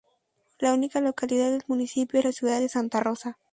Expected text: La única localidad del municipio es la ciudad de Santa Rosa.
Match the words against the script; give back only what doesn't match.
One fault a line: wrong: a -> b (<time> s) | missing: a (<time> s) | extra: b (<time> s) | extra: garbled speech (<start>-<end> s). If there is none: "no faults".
no faults